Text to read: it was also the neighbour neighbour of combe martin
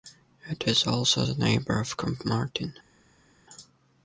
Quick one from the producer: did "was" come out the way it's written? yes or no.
no